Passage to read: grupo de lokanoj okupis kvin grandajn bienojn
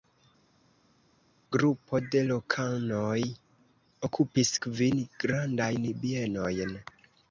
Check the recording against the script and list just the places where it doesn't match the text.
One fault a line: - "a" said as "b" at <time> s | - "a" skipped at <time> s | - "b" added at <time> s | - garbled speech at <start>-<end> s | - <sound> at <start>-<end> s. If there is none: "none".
none